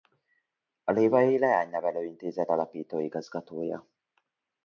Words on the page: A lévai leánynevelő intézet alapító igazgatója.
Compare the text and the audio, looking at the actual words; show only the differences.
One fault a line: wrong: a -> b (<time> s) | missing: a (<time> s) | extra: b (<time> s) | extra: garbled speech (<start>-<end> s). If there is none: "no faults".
no faults